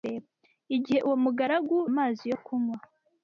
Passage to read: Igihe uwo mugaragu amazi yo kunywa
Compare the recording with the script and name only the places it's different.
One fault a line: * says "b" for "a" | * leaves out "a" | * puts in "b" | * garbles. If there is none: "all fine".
all fine